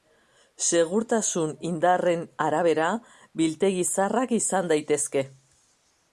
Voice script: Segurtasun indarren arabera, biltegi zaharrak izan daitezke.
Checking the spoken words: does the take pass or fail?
pass